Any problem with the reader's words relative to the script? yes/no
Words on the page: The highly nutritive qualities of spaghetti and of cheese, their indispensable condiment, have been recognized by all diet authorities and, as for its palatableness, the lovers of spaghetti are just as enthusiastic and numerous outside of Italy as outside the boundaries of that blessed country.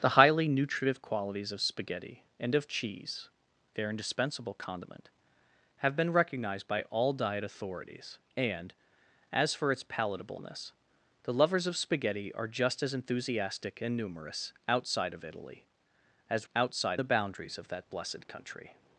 no